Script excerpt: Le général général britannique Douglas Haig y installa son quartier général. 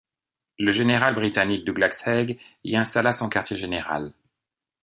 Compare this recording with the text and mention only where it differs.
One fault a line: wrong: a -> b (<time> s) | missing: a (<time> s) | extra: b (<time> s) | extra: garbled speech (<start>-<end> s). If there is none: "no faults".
missing: général (1.1 s)